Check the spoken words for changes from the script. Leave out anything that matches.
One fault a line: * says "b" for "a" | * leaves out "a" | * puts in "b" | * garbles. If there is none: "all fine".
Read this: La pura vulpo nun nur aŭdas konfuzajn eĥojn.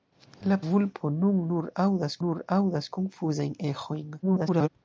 * leaves out "pura"
* puts in "nur aŭdas"
* garbles